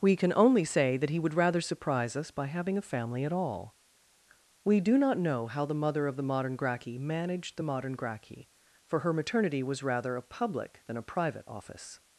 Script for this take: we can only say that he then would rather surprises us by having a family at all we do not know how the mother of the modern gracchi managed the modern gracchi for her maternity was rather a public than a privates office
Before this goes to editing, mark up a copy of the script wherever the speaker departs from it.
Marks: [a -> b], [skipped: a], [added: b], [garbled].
we can only say that he [skipped: then] would rather [surprises -> surprise] us by having a family at all we do not know how the mother of the modern gracchi managed the modern gracchi for her maternity was rather a public than a [privates -> private] office